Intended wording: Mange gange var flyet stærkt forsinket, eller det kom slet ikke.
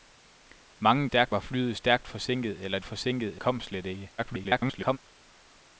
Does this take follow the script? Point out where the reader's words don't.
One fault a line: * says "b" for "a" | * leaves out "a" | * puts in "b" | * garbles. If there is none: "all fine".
* says "stærkt" for "gange"
* says "forsinket" for "det"
* garbles